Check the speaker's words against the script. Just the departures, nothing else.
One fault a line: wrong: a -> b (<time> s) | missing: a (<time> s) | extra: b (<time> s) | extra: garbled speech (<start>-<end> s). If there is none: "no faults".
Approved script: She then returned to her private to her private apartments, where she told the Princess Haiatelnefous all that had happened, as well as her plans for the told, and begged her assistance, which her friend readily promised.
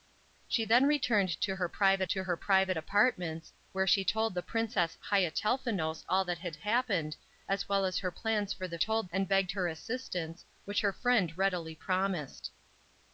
no faults